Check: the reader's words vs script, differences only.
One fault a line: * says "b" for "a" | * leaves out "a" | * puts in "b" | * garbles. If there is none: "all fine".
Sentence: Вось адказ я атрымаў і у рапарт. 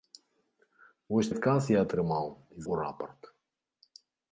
all fine